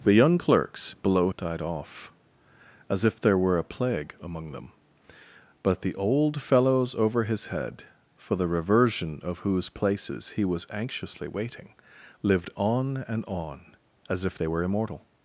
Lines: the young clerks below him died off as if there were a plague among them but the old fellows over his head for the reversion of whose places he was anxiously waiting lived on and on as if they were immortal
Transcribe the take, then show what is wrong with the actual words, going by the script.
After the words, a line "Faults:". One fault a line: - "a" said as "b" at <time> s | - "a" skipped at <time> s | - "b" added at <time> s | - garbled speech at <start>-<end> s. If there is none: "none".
the young clerks below died off as if there were a plague among them but the old fellows over his head for the reversion of whose places he was anxiously waiting lived on and on as if they were immortal
Faults:
- "him" skipped at 1.3 s